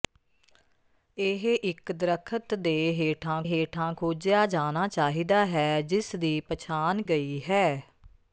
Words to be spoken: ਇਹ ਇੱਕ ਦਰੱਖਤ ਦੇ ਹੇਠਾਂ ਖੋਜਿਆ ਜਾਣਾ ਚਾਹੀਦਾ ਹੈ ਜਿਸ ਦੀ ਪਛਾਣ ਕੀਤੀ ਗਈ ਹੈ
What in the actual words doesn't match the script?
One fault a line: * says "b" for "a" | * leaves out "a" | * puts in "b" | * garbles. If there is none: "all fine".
* puts in "ਹੇਠਾਂ"
* leaves out "ਕੀਤੀ"